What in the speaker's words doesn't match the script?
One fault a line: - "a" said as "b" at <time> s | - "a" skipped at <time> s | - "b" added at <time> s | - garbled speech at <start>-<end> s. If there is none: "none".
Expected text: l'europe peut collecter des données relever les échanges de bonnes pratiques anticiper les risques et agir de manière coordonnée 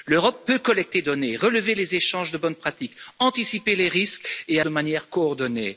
- "des" skipped at 1.0 s
- "agir" skipped at 4.6 s